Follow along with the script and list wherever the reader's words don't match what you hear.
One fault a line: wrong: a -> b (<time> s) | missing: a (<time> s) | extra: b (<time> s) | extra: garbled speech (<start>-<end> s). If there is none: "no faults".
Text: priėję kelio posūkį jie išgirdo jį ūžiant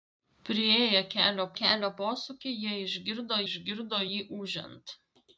extra: kelio (1.6 s)
extra: išgirdo (3.5 s)